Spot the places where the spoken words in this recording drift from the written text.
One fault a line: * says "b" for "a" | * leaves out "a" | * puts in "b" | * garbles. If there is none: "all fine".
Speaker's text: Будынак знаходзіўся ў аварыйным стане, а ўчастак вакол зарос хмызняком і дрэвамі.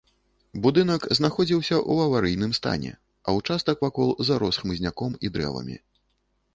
all fine